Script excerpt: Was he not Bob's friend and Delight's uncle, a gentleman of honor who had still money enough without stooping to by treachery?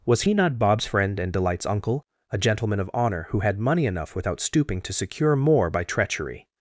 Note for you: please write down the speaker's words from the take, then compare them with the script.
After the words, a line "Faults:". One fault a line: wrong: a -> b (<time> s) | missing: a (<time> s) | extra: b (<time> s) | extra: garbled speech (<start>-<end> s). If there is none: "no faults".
Was he not Bob's friend and Delight's uncle, a gentleman of honor who had money enough without stooping to secure more by treachery?
Faults:
missing: still (3.6 s)
extra: secure more (4.9 s)